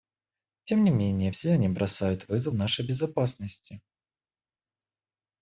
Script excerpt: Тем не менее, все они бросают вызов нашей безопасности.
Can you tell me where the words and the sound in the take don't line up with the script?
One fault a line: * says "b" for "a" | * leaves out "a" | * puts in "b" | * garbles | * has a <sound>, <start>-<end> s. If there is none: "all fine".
all fine